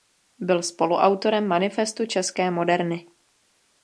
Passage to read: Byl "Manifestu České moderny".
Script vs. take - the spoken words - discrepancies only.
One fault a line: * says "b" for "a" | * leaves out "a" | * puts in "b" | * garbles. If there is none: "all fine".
* puts in "spoluautorem"